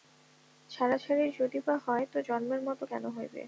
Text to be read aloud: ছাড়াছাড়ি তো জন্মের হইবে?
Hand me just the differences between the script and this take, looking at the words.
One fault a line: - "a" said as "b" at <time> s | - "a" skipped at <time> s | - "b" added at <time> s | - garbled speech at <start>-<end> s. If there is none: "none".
- "যদি বা হয়" added at 1.4 s
- "মতো কেন" added at 2.7 s